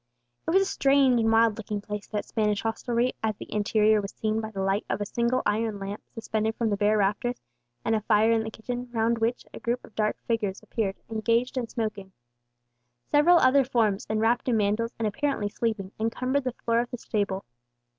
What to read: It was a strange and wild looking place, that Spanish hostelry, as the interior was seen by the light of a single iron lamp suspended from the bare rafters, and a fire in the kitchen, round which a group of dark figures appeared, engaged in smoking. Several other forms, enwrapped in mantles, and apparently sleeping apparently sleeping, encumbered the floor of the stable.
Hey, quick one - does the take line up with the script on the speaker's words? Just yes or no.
no